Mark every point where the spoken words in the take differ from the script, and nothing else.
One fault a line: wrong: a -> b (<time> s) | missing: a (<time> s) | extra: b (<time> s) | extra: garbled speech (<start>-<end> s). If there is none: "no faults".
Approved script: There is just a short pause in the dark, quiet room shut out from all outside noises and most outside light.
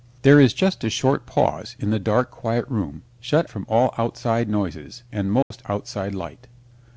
missing: out (3.5 s)